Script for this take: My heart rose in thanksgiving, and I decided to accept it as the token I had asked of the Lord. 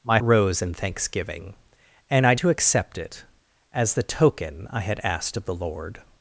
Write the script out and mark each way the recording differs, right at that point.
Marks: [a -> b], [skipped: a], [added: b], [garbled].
My [skipped: heart] rose in thanksgiving, and I [skipped: decided] to accept it as the token I had asked of the Lord.